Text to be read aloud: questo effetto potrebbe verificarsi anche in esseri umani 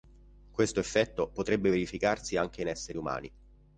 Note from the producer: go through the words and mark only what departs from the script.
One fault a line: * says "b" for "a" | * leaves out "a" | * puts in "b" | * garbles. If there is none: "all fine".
all fine